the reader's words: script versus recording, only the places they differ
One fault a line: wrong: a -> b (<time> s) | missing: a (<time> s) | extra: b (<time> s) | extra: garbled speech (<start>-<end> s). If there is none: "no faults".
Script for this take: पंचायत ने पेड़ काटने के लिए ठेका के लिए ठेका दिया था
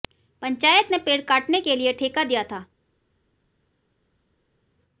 missing: के लिए ठेका (2.2 s)